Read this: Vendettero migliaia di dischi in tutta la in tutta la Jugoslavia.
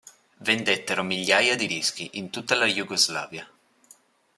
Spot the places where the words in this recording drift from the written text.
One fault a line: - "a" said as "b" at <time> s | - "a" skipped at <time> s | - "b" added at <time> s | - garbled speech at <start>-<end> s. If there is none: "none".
- "in tutta la" skipped at 2.7 s